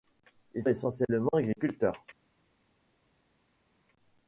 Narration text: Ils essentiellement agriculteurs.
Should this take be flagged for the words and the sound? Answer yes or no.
no